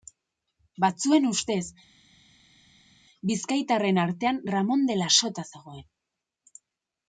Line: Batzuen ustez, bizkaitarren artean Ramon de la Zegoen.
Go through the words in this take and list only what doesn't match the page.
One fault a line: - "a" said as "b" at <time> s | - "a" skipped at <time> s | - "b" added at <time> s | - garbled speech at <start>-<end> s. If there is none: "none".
- "Sota" added at 5.2 s